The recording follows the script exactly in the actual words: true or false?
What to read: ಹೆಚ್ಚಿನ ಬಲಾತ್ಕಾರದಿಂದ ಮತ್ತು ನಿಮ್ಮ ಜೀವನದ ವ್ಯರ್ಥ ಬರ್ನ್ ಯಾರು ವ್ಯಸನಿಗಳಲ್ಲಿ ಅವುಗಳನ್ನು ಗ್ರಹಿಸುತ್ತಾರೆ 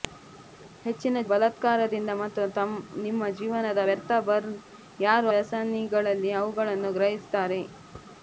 true